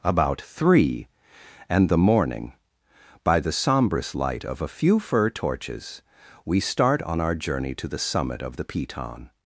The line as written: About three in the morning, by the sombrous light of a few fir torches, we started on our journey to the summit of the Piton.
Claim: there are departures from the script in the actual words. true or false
true